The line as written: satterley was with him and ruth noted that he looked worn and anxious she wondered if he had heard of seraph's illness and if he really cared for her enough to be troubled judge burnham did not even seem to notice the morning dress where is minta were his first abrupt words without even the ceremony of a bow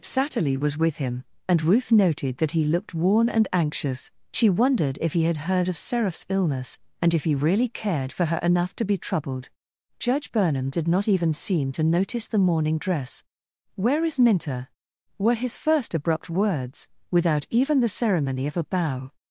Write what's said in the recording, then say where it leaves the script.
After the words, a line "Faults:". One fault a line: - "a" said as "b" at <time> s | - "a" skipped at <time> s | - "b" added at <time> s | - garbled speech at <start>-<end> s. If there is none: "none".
satterley was with him and ruth noted that he looked worn and anxious she wondered if he had heard of seraph's illness and if he really cared for her enough to be troubled judge burnham did not even seem to notice the morning dress where is minta were his first abrupt words without even the ceremony of a bow
Faults:
none